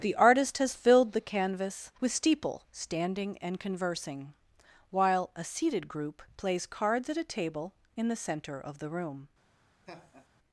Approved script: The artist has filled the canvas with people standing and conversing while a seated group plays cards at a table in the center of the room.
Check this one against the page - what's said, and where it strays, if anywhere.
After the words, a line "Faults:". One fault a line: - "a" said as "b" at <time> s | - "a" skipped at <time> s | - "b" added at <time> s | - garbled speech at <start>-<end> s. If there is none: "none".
The artist has filled the canvas with steeple standing and conversing while a seated group plays cards at a table in the center of the room.
Faults:
- "people" said as "steeple" at 2.1 s